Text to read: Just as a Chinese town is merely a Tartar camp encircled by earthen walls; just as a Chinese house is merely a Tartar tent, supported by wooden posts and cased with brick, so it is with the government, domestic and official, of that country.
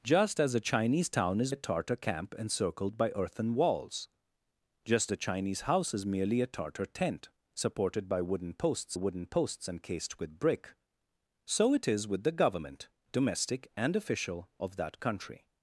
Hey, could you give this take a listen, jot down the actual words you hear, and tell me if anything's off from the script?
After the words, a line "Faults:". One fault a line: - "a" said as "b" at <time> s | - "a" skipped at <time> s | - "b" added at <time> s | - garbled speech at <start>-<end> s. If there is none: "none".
Just as a Chinese town is a Tartar camp encircled by earthen walls; just a Chinese house is merely a Tartar tent, supported by wooden posts wooden posts and cased with brick, so it is with the government, domestic and official, of that country.
Faults:
- "merely" skipped at 1.5 s
- "as" skipped at 5.1 s
- "wooden posts" added at 8.9 s